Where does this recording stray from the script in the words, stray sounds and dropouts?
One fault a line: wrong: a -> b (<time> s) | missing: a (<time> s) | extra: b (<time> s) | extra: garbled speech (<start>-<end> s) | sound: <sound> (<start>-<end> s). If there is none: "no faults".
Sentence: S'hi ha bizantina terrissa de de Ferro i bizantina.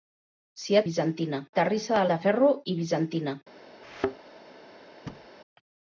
sound: thud (3.8-4.2 s)
sound: thud (5.1-5.3 s)